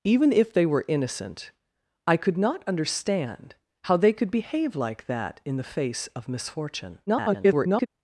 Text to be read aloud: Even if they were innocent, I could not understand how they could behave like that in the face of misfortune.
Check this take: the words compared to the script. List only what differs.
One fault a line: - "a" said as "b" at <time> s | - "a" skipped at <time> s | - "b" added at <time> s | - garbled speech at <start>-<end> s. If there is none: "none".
- garbled speech at 7.1-7.9 s